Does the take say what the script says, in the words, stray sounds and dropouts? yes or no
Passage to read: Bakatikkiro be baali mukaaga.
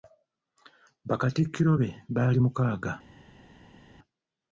yes